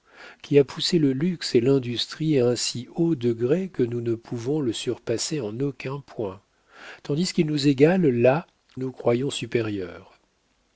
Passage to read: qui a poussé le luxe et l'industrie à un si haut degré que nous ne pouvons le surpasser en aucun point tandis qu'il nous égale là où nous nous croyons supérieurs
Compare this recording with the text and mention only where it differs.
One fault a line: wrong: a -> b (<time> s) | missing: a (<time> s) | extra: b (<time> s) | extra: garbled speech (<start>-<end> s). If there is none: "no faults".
missing: où nous (8.5 s)